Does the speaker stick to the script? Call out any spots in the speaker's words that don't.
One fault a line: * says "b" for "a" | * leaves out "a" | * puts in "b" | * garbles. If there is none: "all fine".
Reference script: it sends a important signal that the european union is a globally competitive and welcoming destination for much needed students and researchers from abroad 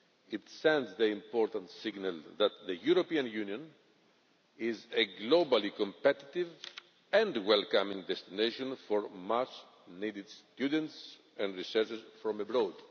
* says "the" for "a"